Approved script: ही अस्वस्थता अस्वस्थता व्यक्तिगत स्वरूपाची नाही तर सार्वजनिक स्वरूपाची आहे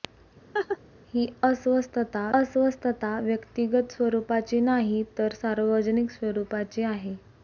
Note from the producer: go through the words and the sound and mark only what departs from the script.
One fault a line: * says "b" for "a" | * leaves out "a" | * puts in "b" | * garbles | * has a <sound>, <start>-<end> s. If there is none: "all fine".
* has a laugh, 0.5-0.8 s